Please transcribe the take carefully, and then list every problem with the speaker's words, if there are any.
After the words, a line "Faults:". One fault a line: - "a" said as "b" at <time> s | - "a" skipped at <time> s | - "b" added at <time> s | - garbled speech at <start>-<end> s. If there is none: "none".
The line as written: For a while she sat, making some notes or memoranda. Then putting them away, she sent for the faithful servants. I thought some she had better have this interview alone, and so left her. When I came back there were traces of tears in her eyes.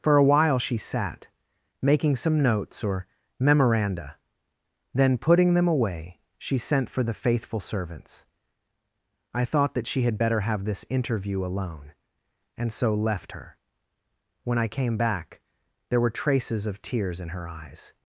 For a while she sat, making some notes or memoranda. Then putting them away, she sent for the faithful servants. I thought that she had better have this interview alone, and so left her. When I came back there were traces of tears in her eyes.
Faults:
- "some" said as "that" at 9.7 s